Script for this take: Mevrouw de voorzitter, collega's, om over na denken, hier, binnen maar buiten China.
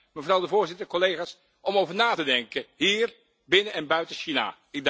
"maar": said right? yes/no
no